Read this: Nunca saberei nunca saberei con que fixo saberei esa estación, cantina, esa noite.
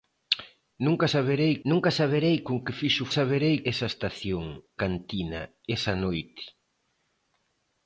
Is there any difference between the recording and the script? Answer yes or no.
no